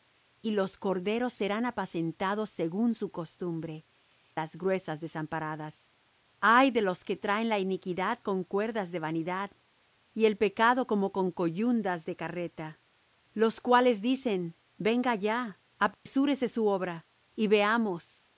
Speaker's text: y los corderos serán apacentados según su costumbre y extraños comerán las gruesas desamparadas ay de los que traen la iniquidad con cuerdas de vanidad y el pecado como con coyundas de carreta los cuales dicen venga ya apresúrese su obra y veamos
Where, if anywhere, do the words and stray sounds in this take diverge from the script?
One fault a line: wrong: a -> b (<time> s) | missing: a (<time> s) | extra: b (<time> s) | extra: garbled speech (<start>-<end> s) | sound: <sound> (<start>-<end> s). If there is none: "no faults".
missing: y extraños comerán (3.8 s)
sound: dropout (15.9-16.1 s)